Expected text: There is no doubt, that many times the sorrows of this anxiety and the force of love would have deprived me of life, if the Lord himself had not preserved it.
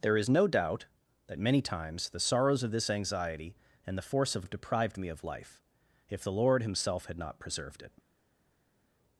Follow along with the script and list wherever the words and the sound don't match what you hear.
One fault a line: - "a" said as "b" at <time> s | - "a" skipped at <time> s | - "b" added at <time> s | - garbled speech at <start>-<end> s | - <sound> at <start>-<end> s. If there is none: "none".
- "love would" skipped at 4.5 s